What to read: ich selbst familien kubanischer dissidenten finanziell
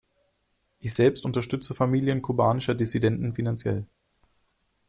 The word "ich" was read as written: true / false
true